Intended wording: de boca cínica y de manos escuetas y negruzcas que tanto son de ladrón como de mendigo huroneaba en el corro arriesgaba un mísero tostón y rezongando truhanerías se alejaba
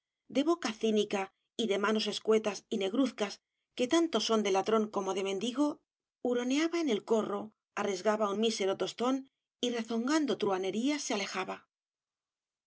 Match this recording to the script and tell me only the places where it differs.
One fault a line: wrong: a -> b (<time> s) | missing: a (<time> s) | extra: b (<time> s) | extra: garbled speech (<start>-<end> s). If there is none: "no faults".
no faults